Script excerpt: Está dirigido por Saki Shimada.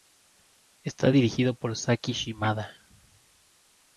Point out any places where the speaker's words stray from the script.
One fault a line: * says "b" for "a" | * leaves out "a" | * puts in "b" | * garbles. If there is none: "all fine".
all fine